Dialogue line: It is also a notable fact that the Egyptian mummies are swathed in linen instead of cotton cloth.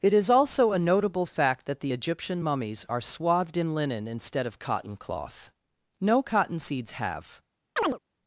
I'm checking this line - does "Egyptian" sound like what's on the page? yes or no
yes